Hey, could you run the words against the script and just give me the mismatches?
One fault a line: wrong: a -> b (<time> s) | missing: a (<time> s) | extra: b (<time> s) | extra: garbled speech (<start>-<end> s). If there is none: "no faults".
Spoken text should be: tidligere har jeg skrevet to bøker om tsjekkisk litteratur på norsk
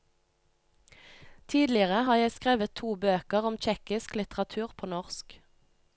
no faults